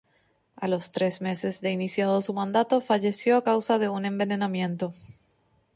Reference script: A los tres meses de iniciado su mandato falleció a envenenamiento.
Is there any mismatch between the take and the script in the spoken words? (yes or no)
yes